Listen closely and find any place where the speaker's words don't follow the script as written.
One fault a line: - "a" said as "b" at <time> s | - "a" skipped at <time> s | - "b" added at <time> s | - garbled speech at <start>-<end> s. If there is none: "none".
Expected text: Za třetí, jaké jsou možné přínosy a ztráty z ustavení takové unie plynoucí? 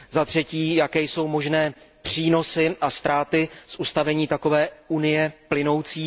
none